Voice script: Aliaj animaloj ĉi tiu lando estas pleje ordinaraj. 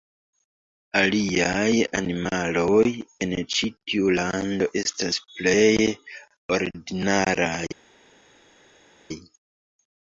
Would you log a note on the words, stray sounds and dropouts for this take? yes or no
yes